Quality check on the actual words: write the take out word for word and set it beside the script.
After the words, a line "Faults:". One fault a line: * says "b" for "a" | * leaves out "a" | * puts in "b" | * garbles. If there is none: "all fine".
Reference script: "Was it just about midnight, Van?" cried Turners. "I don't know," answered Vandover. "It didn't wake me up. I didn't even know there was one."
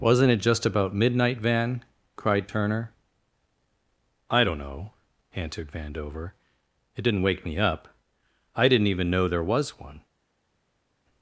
"Wasn't it just about midnight, Van?" cried Turner. "I don't know," answered Vandover. "It didn't wake me up. I didn't even know there was one."
Faults:
* says "Wasn't" for "Was"
* says "Turner" for "Turners"